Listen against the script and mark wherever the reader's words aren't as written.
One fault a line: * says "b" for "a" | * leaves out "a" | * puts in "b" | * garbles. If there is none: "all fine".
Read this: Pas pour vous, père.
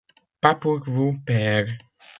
all fine